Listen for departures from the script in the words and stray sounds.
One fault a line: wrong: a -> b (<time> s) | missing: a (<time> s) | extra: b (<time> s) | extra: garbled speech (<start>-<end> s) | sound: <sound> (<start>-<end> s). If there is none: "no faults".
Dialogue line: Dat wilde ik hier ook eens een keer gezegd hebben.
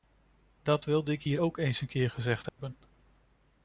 sound: dropout (2.5-2.6 s)